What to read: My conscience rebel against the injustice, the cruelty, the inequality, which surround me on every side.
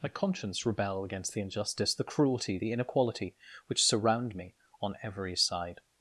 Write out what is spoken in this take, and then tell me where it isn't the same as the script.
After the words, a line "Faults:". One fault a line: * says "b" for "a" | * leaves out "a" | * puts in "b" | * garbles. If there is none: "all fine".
My conscience rebel against the injustice, the cruelty, the inequality, which surround me on every side.
Faults:
all fine